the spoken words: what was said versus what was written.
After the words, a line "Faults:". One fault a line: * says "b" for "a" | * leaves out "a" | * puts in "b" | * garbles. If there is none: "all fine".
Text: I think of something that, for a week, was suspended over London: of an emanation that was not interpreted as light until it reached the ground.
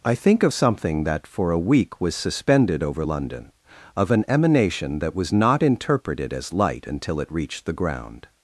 I think of something that, for a week, was suspended over London: of an emanation that was not interpreted as light until it reached the ground.
Faults:
all fine